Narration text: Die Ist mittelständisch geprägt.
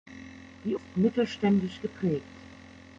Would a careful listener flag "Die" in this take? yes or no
no